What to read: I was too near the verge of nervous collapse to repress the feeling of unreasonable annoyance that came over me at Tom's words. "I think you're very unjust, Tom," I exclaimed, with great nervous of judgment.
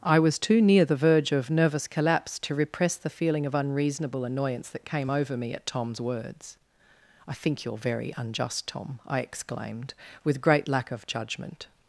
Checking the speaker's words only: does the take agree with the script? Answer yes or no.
no